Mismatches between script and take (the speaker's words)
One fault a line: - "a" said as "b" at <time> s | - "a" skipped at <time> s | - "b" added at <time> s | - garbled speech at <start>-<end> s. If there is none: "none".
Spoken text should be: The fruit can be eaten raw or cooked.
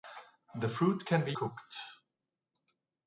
- "eaten raw or" skipped at 1.3 s